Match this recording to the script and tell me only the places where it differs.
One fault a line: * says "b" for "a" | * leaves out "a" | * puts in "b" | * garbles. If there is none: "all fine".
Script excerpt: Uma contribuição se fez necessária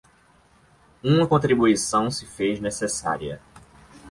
all fine